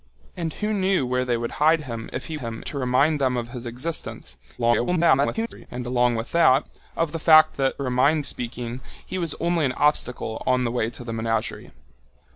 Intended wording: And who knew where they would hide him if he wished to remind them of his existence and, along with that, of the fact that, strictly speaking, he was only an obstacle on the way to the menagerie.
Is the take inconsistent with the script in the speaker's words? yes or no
yes